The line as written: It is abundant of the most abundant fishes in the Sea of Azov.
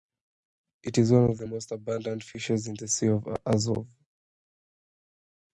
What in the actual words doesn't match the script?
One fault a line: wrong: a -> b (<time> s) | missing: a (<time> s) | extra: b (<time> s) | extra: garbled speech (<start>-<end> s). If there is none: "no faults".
wrong: abundant -> one (1.1 s)